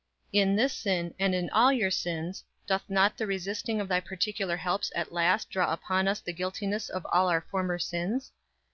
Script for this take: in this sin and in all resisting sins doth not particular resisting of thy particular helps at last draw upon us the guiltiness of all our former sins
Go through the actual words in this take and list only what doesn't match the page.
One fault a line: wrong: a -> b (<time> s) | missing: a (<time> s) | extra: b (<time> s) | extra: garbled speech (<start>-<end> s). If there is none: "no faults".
wrong: resisting -> your (1.7 s)
wrong: particular -> the (3.2 s)